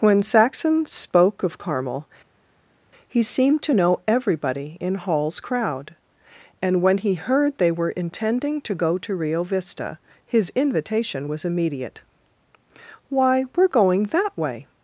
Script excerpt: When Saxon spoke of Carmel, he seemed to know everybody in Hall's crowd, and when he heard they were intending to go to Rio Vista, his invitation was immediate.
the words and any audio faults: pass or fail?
fail